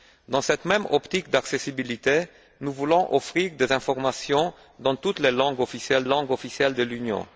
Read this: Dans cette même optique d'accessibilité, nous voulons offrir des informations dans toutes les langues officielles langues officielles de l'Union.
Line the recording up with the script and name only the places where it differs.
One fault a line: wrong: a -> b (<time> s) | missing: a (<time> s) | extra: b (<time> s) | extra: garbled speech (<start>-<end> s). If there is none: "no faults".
no faults